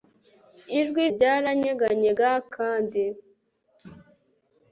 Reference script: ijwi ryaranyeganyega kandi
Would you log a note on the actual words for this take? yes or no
no